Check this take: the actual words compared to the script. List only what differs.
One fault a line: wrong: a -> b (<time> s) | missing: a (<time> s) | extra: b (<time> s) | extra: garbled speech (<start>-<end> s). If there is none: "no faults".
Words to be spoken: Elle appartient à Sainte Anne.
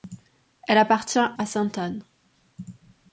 no faults